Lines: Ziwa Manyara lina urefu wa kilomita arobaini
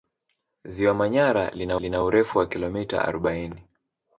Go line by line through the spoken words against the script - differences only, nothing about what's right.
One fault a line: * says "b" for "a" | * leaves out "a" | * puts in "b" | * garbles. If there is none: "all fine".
* puts in "lina"